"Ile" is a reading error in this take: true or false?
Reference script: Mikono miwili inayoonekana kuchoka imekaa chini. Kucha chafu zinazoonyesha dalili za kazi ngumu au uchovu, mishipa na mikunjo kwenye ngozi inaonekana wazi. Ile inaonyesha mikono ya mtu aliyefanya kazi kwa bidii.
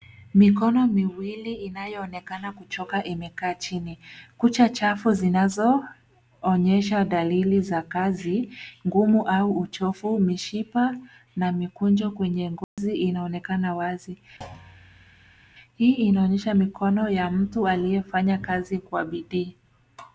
true